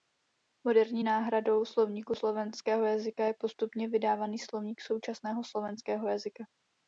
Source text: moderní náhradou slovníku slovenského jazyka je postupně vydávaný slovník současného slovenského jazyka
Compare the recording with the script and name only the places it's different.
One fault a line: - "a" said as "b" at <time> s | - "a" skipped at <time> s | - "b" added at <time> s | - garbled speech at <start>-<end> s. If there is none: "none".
none